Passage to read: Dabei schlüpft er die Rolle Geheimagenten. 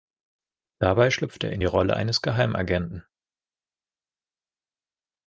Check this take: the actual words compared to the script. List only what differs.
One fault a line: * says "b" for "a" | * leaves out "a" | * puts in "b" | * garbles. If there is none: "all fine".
* puts in "in"
* puts in "eines"